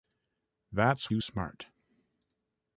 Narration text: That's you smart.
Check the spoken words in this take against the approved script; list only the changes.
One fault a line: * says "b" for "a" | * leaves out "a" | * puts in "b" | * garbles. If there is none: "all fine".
all fine